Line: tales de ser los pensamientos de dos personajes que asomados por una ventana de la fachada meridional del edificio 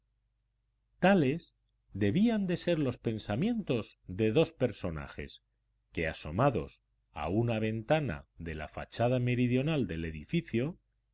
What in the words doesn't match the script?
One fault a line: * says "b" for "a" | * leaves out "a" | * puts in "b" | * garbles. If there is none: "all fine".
* puts in "debían"
* says "a" for "por"